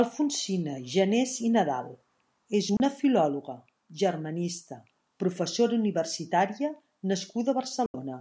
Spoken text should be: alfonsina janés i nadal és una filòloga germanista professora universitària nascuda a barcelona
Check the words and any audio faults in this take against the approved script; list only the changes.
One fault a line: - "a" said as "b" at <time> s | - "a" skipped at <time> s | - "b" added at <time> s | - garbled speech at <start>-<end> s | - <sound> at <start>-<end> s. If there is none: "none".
- dropout at 2.8-2.8 s
- dropout at 7.9-7.9 s